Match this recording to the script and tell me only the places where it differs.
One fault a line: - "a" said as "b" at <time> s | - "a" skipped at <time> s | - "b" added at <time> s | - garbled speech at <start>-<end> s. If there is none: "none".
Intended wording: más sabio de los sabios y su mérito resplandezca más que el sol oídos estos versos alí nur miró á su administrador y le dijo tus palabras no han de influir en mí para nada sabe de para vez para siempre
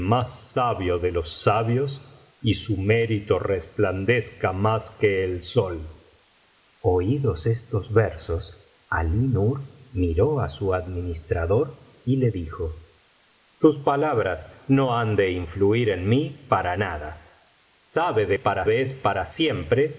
none